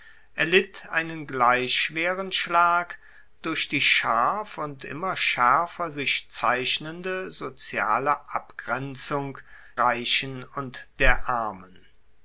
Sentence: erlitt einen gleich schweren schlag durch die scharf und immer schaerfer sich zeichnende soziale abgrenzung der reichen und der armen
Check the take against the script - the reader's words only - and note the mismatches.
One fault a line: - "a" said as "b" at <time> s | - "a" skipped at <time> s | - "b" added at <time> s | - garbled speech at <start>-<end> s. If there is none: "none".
- "der" skipped at 9.4 s